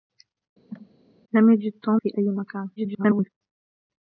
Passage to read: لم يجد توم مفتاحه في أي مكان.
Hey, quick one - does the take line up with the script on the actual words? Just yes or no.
no